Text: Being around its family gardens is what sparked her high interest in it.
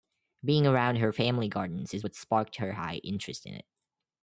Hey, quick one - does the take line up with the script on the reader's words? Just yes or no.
no